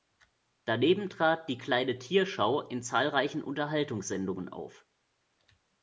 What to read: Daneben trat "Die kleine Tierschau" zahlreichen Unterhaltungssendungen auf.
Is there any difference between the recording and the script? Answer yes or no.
yes